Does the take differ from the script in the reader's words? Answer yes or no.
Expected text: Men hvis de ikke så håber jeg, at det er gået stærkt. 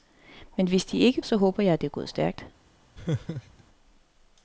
no